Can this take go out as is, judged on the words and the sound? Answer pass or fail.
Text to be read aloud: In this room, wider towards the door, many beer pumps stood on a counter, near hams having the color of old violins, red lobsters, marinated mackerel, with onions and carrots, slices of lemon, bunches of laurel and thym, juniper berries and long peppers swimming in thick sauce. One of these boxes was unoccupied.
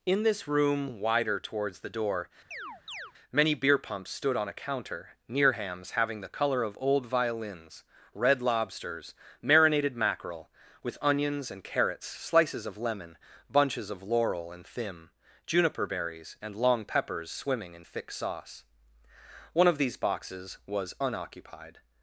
fail